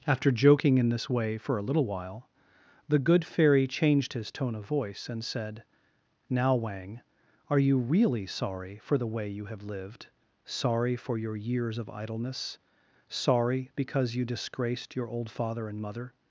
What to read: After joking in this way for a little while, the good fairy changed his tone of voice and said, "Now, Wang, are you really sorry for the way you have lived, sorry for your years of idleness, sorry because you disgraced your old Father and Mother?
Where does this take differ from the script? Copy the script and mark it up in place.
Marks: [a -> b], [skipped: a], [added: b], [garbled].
After joking in this way for a little while, the good fairy changed his tone of voice and said, "Now, Wang, are you really sorry for the way you have lived, sorry for your years of idleness, sorry because you disgraced your old Father and Mother?